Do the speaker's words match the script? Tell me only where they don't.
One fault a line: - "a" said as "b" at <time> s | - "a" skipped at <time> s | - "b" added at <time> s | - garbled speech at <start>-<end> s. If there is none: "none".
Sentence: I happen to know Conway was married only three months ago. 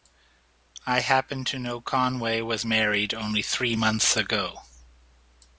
none